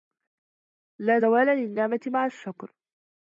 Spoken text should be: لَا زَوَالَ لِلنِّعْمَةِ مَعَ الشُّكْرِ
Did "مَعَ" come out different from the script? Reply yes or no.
no